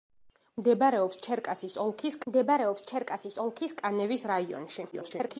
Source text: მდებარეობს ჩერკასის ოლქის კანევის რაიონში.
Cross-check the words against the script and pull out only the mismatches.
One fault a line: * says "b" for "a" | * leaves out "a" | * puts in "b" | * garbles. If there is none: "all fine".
* puts in "მდებარეობს ჩერკასის ოლქის"
* garbles